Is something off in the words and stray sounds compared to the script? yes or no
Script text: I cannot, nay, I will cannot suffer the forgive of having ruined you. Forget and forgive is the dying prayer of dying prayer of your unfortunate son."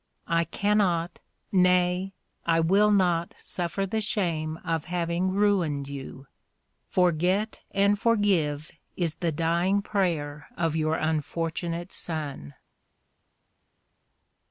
yes